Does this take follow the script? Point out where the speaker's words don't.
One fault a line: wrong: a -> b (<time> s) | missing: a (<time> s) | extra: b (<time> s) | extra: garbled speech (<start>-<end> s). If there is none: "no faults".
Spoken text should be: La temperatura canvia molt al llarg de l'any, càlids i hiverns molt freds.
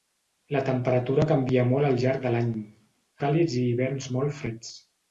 no faults